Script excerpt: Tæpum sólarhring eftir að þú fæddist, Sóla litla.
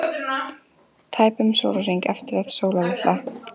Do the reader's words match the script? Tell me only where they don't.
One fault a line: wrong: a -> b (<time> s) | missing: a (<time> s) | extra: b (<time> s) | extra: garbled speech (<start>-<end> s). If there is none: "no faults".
missing: þú fæddist (2.5 s)